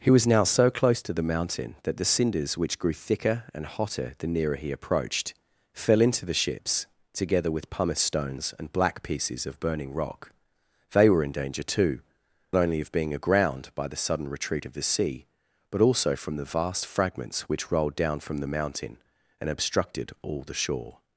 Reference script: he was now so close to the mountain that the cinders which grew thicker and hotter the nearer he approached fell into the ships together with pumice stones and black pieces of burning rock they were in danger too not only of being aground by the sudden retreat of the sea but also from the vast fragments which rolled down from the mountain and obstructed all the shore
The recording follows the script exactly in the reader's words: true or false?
false